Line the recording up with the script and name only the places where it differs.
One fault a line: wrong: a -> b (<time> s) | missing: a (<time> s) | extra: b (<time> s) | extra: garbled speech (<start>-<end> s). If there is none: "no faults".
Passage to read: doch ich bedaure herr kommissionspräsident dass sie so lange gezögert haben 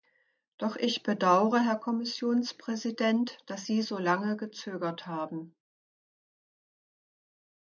no faults